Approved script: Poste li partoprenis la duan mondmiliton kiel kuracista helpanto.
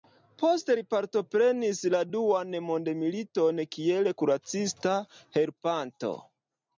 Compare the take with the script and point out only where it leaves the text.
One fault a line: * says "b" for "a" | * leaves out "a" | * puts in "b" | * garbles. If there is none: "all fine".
all fine